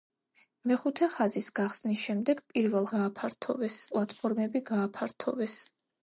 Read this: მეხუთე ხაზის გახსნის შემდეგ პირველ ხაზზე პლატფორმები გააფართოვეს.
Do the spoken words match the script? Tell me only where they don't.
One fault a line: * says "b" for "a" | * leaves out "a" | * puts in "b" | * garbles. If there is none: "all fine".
* says "გააფართოვეს" for "ხაზზე"